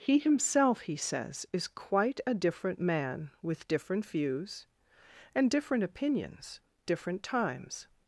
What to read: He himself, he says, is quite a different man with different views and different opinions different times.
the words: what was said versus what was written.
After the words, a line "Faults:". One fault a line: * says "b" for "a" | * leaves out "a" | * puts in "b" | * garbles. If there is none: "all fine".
He himself, he says, is quite a different man with different views and different opinions different times.
Faults:
all fine